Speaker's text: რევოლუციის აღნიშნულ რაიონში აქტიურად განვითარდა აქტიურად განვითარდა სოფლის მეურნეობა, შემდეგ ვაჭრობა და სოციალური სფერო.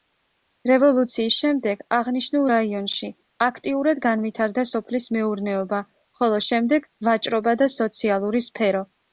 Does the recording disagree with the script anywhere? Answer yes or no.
yes